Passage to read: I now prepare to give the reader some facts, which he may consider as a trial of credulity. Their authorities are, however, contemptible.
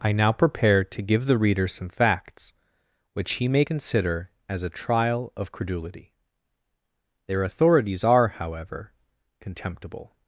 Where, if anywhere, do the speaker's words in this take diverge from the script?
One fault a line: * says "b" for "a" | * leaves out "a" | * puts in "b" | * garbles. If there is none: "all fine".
all fine